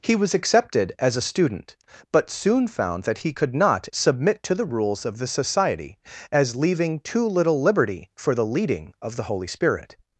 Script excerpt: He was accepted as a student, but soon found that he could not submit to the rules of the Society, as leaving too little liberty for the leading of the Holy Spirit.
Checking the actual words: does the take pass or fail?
pass